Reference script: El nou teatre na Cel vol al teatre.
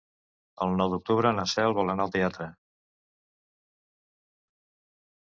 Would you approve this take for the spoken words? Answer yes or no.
no